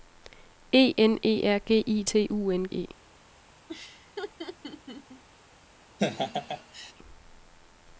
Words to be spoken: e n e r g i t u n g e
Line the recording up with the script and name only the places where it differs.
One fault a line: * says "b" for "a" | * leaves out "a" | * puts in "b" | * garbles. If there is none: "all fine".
* leaves out "g"